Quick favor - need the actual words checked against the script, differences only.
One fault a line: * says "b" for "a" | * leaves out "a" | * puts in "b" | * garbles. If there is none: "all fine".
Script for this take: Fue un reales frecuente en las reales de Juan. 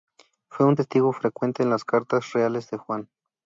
* says "testigo" for "reales"
* puts in "cartas"